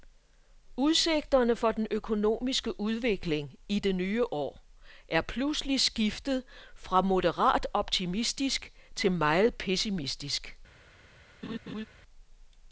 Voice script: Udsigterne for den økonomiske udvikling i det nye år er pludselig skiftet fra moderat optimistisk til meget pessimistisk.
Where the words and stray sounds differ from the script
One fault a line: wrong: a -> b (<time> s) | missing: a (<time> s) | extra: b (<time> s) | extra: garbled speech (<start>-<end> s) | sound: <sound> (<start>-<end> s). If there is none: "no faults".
sound: laugh (11.4-11.9 s)